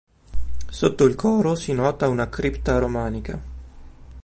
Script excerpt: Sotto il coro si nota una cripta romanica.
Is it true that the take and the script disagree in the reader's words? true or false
false